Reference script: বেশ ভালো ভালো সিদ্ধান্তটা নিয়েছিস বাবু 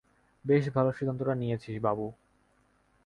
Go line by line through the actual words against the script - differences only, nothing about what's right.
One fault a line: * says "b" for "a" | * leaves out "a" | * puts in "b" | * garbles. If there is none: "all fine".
* leaves out "ভালো"